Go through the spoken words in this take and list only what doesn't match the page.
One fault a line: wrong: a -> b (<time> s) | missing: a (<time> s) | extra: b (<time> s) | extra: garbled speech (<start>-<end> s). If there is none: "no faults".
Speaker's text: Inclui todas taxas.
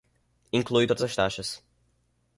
extra: as (1.0 s)